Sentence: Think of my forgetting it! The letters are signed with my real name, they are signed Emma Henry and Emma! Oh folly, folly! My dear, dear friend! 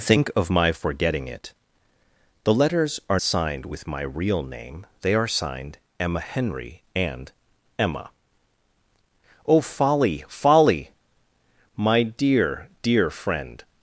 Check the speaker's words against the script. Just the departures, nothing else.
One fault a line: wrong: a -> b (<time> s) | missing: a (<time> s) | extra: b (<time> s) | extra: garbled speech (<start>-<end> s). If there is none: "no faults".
no faults